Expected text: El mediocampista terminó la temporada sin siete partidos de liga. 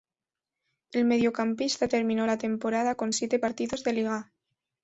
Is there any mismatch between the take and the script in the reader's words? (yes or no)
yes